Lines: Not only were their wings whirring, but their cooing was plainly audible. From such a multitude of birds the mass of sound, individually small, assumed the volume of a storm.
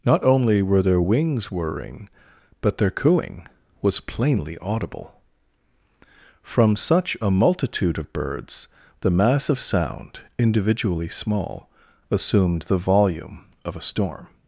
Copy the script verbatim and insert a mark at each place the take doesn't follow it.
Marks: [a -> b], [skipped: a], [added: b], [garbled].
Not only were their wings whirring, but their cooing was plainly audible. From such a multitude of birds the mass of sound, individually small, assumed the volume of a storm.